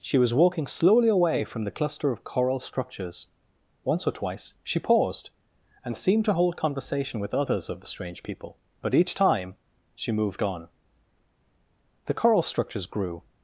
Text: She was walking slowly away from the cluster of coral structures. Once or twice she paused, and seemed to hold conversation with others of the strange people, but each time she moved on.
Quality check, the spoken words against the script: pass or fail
fail